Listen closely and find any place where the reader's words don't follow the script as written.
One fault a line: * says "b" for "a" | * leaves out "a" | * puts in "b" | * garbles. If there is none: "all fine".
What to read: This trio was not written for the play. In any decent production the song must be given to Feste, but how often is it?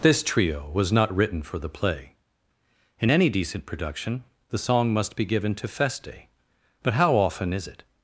all fine